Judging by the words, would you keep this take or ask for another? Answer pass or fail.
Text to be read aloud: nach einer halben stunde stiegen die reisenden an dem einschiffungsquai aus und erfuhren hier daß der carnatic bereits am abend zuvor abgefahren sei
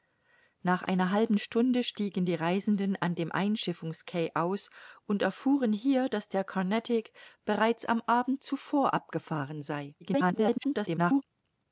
fail